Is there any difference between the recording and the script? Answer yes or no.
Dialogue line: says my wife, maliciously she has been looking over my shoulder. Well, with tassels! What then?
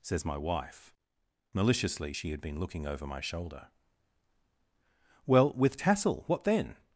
yes